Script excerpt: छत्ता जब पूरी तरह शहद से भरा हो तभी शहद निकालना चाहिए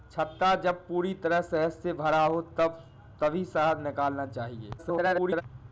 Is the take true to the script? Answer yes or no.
no